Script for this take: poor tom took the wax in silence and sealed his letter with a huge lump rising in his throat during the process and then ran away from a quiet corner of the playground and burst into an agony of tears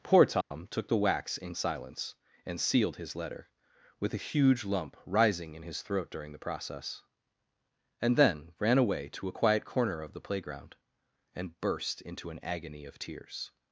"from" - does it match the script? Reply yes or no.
no